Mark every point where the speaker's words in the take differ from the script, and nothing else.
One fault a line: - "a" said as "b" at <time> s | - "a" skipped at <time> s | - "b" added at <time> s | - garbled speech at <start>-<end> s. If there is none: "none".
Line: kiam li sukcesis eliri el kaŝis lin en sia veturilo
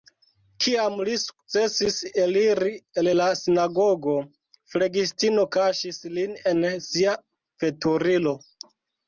- "la sinagogo flegistino" added at 3.1 s